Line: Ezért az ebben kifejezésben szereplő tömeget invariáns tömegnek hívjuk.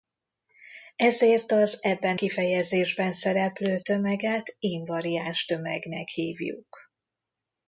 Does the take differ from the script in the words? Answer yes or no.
no